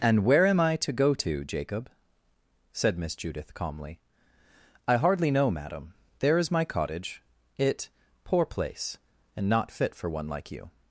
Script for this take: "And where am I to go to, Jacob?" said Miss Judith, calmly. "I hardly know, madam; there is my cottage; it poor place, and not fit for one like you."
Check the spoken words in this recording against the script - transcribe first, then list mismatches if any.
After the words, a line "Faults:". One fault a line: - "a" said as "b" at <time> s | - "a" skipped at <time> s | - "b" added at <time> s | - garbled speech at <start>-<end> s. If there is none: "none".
"And where am I to go to, Jacob?" said Miss Judith, calmly. "I hardly know, madam; there is my cottage; it poor place, and not fit for one like you."
Faults:
none